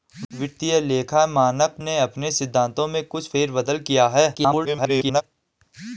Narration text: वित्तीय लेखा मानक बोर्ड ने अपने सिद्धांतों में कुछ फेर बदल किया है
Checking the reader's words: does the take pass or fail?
fail